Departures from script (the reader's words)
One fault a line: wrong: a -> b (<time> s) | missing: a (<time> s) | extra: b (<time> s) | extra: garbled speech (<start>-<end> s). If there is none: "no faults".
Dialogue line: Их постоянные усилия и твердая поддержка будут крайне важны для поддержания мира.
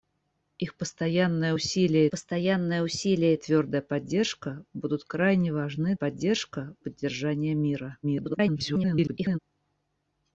extra: постоянные усилия (2.1 s)
wrong: для -> поддержка (5.9 s)
extra: garbled speech (8.0-9.4 s)